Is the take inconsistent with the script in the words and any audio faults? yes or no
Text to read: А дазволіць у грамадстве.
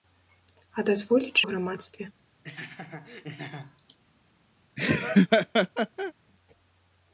yes